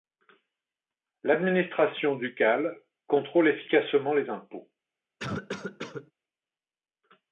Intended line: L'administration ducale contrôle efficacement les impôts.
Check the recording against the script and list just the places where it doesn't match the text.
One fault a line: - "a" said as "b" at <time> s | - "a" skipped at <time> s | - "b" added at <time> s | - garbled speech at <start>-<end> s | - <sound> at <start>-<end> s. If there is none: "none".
- cough at 5.2-6.1 s